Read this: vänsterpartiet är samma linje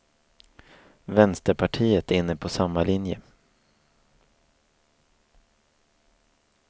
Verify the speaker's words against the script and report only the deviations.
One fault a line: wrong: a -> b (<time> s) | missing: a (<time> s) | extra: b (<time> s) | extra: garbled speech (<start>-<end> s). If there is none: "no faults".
extra: inne på (2.1 s)